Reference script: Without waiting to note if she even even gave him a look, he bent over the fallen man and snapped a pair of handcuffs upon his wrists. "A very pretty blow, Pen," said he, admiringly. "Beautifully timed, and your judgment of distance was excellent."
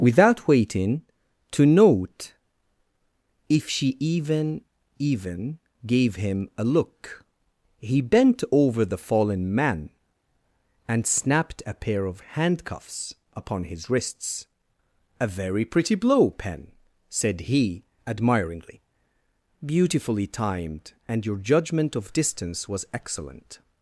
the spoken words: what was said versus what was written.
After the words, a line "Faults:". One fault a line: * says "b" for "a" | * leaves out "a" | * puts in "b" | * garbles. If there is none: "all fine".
Without waiting to note if she even even gave him a look, he bent over the fallen man and snapped a pair of handcuffs upon his wrists. "A very pretty blow, Pen," said he, admiringly. "Beautifully timed, and your judgment of distance was excellent."
Faults:
all fine